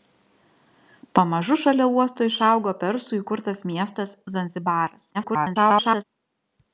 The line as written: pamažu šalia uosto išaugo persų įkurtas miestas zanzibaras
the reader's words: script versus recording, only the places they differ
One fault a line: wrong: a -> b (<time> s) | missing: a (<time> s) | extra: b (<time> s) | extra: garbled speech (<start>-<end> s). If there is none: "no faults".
extra: garbled speech (5.1-6.0 s)